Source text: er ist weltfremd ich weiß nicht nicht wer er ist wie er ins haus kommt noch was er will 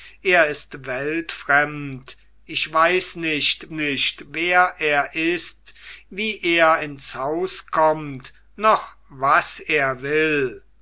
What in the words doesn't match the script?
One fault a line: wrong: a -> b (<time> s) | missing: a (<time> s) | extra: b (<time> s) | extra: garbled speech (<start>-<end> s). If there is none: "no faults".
no faults